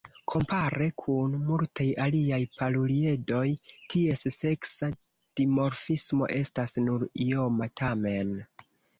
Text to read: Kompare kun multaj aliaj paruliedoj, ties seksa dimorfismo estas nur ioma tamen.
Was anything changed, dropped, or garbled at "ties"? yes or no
no